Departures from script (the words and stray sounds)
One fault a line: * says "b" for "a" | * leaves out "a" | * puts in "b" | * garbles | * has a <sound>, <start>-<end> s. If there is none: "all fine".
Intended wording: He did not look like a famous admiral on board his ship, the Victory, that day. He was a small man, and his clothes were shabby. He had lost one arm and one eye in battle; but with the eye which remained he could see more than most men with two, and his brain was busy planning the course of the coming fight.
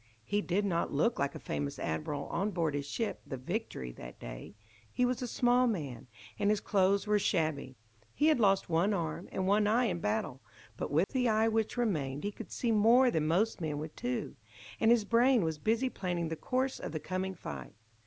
* has a dropout, 11.0-11.1 s